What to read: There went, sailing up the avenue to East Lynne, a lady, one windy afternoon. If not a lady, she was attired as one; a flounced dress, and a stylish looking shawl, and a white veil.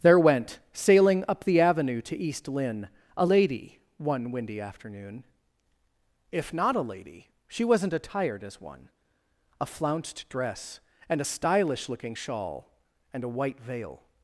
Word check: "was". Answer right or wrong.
wrong